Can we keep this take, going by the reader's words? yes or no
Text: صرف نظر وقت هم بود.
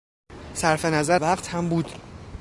yes